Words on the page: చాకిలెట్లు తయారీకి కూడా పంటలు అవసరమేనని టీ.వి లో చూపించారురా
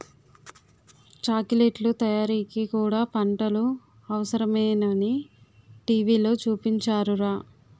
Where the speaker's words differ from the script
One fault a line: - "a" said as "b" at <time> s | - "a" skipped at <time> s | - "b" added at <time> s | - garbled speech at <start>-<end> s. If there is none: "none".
none